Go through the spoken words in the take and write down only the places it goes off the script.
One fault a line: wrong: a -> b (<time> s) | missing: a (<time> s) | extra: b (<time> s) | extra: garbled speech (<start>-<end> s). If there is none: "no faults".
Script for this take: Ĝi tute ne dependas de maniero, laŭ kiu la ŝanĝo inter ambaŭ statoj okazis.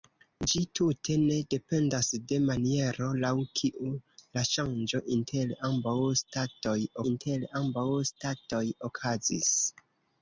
extra: inter ambaŭ statoj (7.1 s)